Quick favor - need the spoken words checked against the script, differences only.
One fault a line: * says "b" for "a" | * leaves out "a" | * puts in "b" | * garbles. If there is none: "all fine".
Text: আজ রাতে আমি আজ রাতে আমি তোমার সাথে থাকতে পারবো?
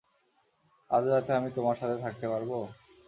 * leaves out "আজ রাতে আমি"